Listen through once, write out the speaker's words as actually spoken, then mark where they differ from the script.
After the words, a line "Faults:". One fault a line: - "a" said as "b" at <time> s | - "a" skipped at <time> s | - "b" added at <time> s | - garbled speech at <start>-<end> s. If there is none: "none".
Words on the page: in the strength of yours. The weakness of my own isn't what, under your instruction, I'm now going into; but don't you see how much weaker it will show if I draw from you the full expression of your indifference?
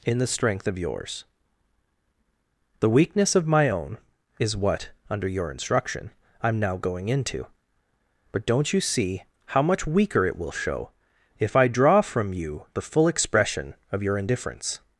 in the strength of yours. The weakness of my own is what, under your instruction, I'm now going into; but don't you see how much weaker it will show if I draw from you the full expression of your indifference?
Faults:
- "isn't" said as "is" at 4.4 s